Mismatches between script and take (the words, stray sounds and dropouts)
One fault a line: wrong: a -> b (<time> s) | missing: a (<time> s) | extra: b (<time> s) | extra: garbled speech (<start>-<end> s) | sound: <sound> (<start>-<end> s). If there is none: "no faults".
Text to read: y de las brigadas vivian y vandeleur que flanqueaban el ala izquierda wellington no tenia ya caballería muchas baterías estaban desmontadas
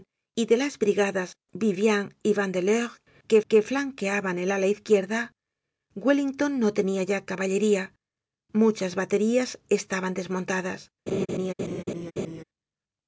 extra: que (3.5 s)
sound: laugh (11.1-12.4 s)